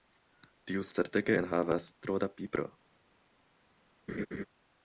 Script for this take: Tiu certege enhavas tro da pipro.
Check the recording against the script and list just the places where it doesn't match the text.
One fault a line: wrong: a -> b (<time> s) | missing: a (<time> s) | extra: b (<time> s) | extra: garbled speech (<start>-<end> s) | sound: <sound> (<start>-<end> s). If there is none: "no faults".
sound: laugh (4.1-4.5 s)